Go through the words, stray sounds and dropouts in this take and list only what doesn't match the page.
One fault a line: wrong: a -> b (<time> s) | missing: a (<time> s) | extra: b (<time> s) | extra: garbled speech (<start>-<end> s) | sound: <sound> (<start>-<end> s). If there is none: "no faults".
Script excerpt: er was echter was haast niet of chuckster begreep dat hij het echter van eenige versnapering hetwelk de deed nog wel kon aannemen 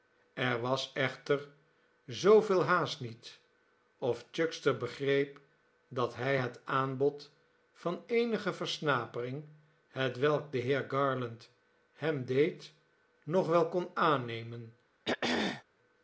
wrong: was -> zooveel (2.0 s)
wrong: echter -> aanbod (6.6 s)
extra: heer garland hem (10.6 s)
sound: throat clearing (15.0-15.6 s)